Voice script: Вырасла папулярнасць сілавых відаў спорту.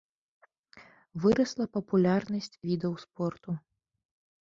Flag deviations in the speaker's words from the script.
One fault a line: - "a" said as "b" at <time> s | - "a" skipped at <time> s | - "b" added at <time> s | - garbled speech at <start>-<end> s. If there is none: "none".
- "сілавых" skipped at 2.5 s